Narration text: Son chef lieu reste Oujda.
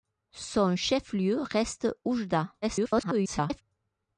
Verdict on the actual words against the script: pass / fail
fail